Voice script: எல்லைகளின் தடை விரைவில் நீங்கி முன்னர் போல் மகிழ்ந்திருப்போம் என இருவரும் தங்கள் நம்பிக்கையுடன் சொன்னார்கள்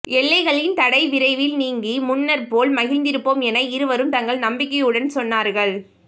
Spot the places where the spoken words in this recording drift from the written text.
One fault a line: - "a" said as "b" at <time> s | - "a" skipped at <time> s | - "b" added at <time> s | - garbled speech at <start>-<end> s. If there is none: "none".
none